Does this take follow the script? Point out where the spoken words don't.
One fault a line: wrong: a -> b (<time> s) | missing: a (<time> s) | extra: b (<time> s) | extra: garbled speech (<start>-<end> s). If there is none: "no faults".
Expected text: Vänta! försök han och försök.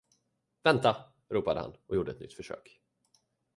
wrong: försök -> ropade (1.3 s)
extra: gjorde ett nytt (1.9 s)